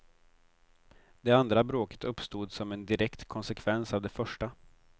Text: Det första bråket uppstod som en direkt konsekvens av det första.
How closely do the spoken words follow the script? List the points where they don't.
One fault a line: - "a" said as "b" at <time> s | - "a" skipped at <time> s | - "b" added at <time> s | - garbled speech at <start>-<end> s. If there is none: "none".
- "första" said as "andra" at 1.3 s